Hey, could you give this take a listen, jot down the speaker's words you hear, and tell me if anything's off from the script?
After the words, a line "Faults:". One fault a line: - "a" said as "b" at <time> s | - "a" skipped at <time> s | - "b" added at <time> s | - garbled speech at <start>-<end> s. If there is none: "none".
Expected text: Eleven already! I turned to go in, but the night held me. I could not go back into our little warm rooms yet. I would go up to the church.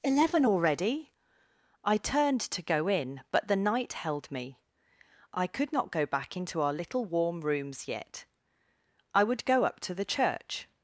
Eleven already! I turned to go in, but the night held me. I could not go back into our little warm rooms yet. I would go up to the church.
Faults:
none